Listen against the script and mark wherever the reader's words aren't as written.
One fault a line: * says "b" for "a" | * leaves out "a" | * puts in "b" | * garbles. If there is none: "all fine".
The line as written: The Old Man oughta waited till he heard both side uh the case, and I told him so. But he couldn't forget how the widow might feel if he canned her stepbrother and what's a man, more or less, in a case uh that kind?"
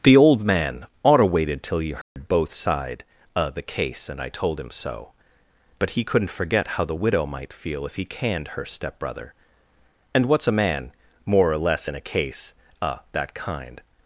all fine